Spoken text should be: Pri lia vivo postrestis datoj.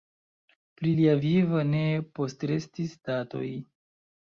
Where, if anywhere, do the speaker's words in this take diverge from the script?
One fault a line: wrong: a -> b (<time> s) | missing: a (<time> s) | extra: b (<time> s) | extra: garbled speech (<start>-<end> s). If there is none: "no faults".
extra: ne (1.7 s)